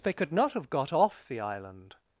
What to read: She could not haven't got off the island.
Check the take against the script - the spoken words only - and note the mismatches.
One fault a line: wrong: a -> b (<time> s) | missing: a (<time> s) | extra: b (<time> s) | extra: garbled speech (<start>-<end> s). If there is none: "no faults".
wrong: She -> They (0.0 s)
wrong: haven't -> have (0.5 s)